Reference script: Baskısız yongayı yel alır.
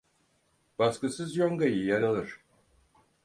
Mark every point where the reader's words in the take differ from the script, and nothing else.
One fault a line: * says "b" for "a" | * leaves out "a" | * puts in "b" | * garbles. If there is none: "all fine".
all fine